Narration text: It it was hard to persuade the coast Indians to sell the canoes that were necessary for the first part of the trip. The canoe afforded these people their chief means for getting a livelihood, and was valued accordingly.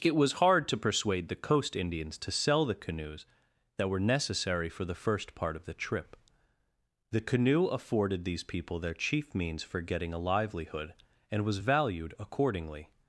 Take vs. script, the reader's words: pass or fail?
fail